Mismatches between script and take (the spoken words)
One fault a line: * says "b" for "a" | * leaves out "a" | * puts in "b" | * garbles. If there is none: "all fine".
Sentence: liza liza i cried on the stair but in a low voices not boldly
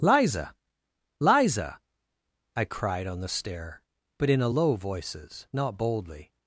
all fine